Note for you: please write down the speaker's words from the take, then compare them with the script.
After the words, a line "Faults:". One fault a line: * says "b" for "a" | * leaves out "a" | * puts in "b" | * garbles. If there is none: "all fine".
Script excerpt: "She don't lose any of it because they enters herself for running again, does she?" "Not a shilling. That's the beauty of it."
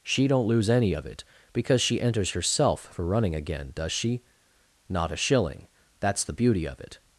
"She don't lose any of it because she enters herself for running again, does she?" "Not a shilling. That's the beauty of it."
Faults:
* says "she" for "they"